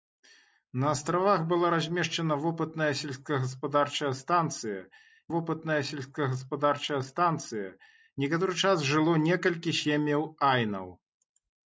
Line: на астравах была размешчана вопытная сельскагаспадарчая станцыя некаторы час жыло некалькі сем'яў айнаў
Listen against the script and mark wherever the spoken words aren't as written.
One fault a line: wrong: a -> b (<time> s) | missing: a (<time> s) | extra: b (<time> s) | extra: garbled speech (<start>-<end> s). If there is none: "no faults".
extra: вопытная сельскагаспадарчая станцыя (5.4 s)